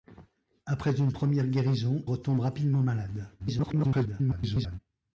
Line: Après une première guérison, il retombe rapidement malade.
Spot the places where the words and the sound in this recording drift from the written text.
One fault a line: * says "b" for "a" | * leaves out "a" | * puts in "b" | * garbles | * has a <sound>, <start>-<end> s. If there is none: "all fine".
* leaves out "il"
* garbles